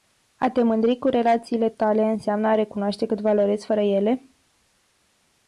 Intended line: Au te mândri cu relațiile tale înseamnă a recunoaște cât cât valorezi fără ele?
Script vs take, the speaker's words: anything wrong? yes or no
yes